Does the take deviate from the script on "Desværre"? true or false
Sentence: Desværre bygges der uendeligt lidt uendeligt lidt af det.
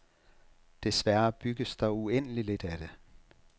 false